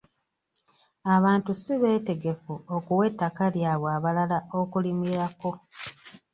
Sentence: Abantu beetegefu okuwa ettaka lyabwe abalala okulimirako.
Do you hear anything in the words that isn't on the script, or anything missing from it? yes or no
yes